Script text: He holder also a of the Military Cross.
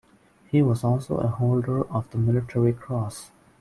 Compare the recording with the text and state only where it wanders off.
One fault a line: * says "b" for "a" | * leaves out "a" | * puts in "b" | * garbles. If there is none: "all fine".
* says "was" for "holder"
* puts in "holder"